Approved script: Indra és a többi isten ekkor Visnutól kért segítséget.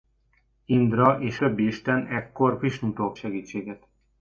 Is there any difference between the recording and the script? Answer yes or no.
yes